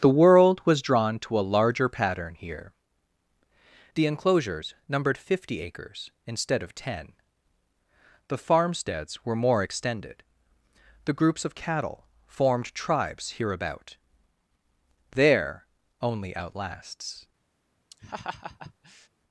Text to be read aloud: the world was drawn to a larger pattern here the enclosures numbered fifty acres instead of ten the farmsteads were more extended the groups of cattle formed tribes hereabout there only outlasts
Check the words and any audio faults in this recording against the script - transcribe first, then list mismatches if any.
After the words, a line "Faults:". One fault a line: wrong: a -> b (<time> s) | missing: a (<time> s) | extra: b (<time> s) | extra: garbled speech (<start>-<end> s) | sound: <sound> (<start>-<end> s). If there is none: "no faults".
the world was drawn to a larger pattern here the enclosures numbered fifty acres instead of ten the farmsteads were more extended the groups of cattle formed tribes hereabout there only outlasts
Faults:
sound: laugh (17.9-19.1 s)